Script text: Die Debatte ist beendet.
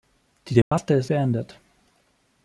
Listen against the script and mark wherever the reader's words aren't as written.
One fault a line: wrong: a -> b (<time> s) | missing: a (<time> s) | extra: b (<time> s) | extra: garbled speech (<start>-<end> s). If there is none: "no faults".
no faults